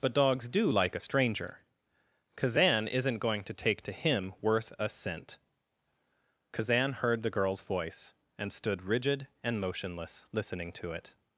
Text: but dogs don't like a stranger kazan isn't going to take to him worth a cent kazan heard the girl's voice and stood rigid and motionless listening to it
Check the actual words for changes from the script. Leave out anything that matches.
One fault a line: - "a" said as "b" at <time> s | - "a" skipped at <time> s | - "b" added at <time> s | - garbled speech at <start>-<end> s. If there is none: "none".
- "don't" said as "do" at 0.5 s